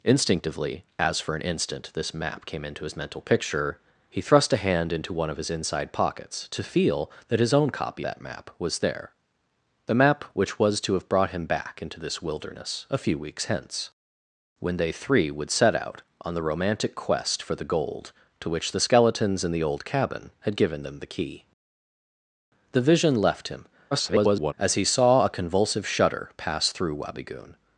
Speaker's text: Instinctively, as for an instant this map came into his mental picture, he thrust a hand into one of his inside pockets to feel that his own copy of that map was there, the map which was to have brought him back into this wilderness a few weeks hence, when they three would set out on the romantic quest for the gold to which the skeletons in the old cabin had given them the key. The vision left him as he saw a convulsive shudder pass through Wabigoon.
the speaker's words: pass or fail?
fail